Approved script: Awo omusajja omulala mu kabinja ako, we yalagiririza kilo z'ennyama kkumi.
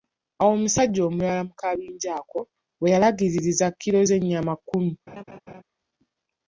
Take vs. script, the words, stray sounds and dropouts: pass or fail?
fail